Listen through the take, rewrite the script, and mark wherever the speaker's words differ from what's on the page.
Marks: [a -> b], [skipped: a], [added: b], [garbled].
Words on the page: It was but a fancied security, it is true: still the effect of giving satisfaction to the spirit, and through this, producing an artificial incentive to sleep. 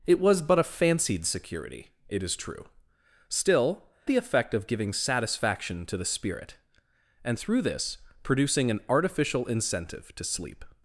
It was but a fancied security, it is true: still the effect of giving satisfaction to the spirit, and through this, producing an artificial incentive to sleep.